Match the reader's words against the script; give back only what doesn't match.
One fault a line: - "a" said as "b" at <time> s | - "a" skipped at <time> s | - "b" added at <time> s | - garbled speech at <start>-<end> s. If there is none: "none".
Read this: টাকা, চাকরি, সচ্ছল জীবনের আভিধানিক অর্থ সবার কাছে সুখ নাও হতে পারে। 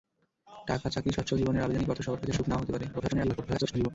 - garbled speech at 2.9-3.9 s